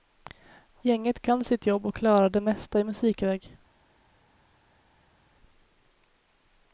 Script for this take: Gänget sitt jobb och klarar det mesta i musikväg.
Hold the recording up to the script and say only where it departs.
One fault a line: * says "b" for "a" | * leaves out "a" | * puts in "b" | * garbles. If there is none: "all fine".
* puts in "kan"